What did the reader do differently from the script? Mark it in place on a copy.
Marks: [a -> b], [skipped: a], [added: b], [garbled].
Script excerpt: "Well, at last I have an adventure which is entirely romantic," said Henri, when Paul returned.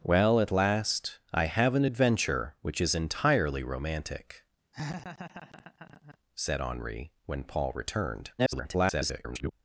"Well, at last I have an adventure which is entirely romantic," said Henri, when Paul returned. [garbled]